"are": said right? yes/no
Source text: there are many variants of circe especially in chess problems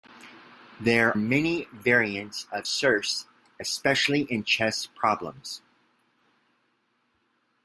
no